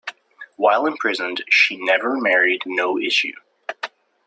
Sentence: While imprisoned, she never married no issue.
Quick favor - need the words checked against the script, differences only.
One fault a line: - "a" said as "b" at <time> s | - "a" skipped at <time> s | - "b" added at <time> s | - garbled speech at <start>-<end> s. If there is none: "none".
none